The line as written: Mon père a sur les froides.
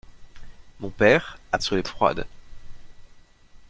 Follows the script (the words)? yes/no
yes